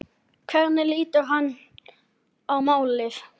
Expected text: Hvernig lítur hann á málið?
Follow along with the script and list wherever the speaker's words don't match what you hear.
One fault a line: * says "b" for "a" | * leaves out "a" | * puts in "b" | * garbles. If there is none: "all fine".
all fine